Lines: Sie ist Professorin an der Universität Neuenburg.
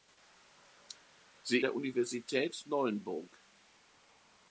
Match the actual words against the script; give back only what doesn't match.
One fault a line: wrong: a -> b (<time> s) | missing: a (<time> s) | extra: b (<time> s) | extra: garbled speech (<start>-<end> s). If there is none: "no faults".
missing: ist Professorin an (1.6 s)